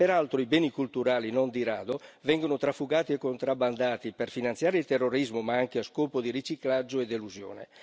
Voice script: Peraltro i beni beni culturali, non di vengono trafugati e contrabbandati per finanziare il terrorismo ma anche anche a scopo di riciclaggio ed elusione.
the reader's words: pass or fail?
fail